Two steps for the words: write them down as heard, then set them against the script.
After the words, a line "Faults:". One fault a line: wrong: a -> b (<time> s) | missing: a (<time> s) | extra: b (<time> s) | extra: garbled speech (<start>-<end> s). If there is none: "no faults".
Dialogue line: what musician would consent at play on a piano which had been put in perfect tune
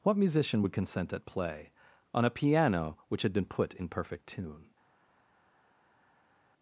what musician would consent at play on a piano which had been put in perfect tune
Faults:
no faults